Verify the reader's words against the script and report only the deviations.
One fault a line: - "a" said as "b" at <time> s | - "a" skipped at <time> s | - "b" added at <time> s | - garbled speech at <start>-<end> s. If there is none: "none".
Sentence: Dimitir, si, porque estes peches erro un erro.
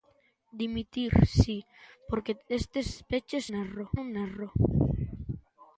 none